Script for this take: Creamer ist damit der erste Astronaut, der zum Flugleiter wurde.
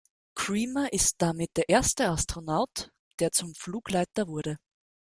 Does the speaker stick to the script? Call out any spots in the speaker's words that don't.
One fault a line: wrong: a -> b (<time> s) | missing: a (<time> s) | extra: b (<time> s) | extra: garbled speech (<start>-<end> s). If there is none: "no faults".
no faults